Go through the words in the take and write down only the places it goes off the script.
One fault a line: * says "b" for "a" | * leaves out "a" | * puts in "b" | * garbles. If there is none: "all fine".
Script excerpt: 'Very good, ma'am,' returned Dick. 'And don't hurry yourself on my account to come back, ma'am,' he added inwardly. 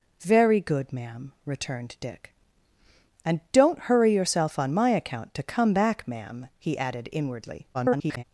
* garbles